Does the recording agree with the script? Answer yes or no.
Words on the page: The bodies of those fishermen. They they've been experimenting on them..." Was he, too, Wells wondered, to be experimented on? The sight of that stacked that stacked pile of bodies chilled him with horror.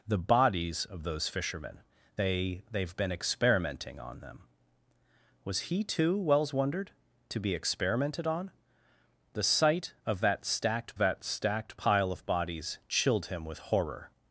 yes